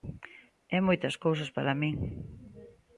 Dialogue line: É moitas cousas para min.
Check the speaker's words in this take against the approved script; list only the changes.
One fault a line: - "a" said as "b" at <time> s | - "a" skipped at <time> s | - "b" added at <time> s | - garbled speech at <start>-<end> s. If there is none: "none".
none